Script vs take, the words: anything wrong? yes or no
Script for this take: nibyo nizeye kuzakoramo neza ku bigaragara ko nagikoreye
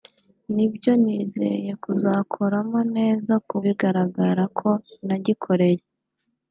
no